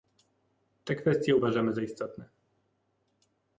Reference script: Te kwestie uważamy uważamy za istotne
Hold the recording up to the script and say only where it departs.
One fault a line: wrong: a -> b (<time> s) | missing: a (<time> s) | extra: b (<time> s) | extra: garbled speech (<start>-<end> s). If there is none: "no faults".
missing: uważamy (1.7 s)